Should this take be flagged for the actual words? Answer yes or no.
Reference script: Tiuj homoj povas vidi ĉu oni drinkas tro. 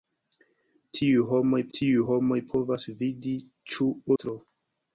yes